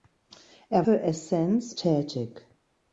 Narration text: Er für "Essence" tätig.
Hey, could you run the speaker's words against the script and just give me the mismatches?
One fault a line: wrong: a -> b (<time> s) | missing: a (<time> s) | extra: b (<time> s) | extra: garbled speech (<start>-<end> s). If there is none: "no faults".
no faults